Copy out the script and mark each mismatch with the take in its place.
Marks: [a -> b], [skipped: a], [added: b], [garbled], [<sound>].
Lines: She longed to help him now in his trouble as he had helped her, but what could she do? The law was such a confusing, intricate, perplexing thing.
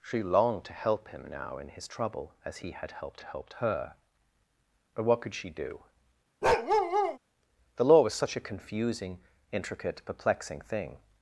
She longed to help him now in his trouble as he had helped [added: helped] her, but what could she do? [bark] The law was such a confusing, intricate, perplexing thing.